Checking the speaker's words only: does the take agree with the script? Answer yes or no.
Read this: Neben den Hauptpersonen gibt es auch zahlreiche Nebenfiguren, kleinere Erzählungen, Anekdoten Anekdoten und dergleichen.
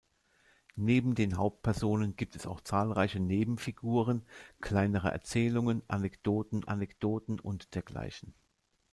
yes